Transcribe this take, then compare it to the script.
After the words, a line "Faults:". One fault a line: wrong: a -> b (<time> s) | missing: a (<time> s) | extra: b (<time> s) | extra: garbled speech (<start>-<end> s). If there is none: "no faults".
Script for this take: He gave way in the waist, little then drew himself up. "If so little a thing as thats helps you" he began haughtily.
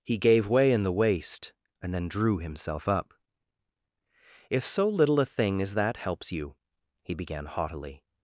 He gave way in the waist, and then drew himself up. "If so little a thing as that helps you" he began haughtily.
Faults:
wrong: little -> and (1.8 s)
wrong: thats -> that (5.7 s)